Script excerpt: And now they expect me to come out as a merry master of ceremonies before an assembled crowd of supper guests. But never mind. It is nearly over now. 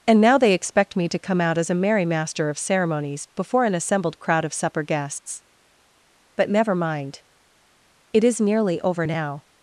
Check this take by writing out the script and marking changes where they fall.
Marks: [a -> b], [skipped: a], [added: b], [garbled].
And now they expect me to come out as a merry master of ceremonies before an assembled crowd of supper guests. But never mind. It is nearly over now.